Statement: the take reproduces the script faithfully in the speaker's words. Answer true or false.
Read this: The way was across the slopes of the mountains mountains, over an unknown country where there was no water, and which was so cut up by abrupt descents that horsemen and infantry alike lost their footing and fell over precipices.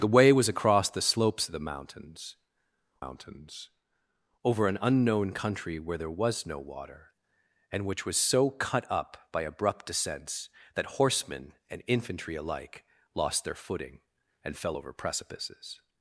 true